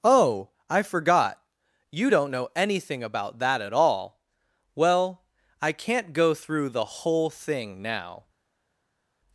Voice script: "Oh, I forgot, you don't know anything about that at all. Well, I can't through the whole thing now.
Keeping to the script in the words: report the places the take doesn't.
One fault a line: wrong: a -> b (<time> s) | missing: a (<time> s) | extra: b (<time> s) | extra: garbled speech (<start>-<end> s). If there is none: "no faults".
extra: go (6.1 s)